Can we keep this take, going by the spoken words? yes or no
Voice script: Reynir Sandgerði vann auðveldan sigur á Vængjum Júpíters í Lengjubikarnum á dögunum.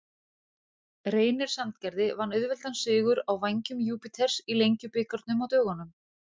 yes